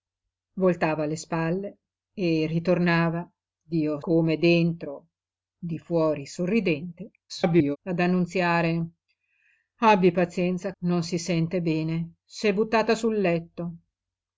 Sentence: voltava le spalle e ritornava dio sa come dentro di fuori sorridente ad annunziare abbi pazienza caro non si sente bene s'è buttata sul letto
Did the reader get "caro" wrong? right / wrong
wrong